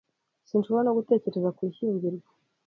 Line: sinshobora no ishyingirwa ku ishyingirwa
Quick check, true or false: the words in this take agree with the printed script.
false